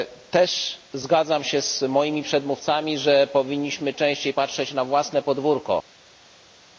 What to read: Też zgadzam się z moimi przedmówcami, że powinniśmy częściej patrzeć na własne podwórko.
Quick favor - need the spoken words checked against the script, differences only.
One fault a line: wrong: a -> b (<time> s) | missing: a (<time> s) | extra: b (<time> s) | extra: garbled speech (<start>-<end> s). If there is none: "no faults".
no faults